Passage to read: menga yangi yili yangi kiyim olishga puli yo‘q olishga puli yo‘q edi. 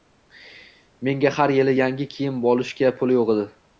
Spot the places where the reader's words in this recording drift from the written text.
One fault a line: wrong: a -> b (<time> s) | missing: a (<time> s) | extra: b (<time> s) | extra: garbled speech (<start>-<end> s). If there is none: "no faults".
wrong: yangi -> har (1.4 s)
missing: olishga puli yo‘q (3.3 s)